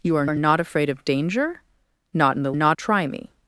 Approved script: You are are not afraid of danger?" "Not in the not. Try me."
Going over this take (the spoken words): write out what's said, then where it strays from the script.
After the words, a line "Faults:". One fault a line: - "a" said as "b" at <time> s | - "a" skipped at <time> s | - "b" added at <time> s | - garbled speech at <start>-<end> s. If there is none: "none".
You are are not afraid of danger?" "Not in the not. Try me."
Faults:
none